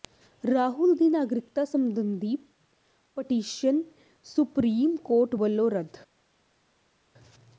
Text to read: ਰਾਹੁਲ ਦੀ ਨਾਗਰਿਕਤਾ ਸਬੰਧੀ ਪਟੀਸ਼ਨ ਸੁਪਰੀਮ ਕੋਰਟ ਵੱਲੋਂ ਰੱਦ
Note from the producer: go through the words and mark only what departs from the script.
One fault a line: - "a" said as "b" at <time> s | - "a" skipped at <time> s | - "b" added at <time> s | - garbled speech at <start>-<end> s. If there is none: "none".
none